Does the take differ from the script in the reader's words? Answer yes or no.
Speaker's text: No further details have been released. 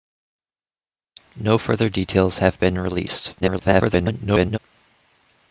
yes